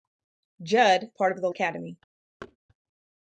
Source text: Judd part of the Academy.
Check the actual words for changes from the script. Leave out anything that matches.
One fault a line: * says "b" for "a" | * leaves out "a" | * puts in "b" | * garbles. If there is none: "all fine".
all fine